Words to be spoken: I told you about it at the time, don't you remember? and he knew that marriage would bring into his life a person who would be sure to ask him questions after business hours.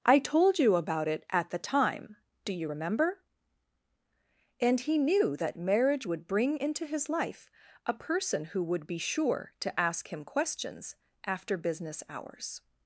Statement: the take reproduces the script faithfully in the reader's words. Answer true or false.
false